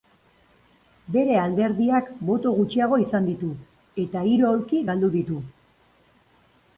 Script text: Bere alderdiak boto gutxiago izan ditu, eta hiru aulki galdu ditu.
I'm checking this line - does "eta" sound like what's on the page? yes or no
yes